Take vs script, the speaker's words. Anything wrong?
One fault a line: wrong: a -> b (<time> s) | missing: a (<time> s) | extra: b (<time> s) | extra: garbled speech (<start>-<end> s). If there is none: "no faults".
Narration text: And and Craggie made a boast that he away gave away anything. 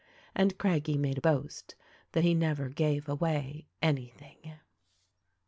missing: and (0.6 s)
wrong: away -> never (2.3 s)